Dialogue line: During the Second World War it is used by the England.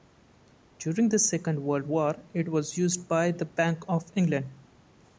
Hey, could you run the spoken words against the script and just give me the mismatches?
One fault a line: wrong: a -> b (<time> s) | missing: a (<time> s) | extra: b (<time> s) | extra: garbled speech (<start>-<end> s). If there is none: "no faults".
wrong: is -> was (2.5 s)
extra: Bank of (3.5 s)